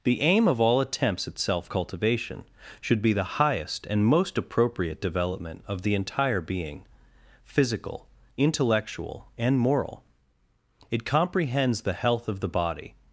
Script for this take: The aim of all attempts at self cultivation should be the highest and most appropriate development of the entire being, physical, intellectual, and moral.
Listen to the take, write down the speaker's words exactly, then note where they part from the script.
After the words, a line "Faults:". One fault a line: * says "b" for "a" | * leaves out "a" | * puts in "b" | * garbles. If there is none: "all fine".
The aim of all attempts at self cultivation should be the highest and most appropriate development of the entire being, physical, intellectual, and moral. It comprehends the health of the body
Faults:
* puts in "It comprehends the health of the body"